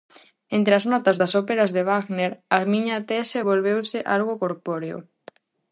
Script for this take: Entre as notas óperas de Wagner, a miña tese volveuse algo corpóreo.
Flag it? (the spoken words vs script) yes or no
yes